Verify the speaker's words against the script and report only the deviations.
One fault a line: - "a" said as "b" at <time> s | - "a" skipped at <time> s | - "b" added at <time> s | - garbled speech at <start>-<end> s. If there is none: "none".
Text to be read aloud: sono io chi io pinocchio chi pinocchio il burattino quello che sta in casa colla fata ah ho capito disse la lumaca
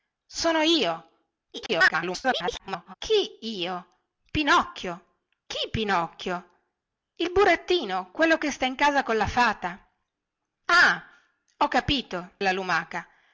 - garbled speech at 1.5-2.9 s
- "disse" skipped at 12.3 s